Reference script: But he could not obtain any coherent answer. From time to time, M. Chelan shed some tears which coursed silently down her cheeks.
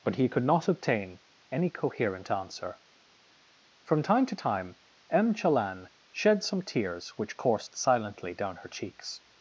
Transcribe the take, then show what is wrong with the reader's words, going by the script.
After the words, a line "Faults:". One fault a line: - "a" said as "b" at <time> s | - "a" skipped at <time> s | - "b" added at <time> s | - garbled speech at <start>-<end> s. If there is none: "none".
But he could not obtain any coherent answer. From time to time, M. Chelan shed some tears which coursed silently down her cheeks.
Faults:
none